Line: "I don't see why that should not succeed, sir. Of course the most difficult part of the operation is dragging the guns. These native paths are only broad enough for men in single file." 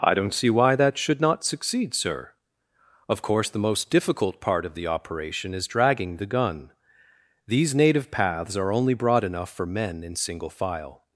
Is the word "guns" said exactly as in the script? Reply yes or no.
no